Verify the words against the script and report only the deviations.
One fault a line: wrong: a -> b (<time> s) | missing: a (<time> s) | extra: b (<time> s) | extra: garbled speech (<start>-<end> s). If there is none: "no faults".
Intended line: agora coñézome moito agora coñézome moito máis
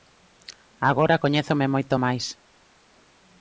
missing: agora coñézome moito (2.0 s)